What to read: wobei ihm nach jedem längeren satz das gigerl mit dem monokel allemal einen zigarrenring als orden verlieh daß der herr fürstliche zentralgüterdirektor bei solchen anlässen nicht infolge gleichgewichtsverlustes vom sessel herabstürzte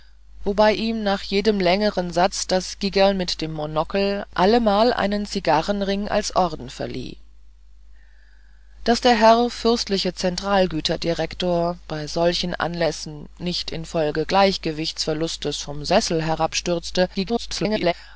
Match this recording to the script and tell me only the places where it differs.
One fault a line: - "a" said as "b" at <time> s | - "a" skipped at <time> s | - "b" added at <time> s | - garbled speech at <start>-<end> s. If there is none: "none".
- garbled speech at 17.1-17.9 s